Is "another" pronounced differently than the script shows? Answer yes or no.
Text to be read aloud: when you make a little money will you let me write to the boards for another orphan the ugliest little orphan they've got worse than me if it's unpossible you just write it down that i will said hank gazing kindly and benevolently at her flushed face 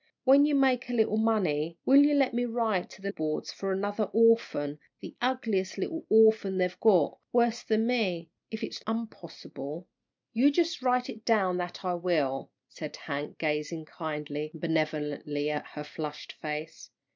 no